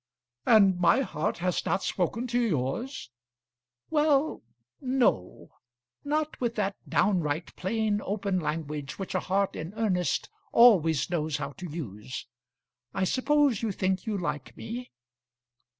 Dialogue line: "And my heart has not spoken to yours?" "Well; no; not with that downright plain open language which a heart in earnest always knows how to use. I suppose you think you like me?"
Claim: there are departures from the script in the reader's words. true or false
false